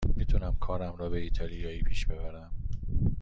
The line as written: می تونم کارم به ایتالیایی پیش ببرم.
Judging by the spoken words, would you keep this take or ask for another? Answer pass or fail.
fail